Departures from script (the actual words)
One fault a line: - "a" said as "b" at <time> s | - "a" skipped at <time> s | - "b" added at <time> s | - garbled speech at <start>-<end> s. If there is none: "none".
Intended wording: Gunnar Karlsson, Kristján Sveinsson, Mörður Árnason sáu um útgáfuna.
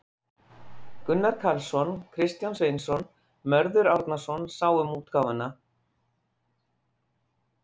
none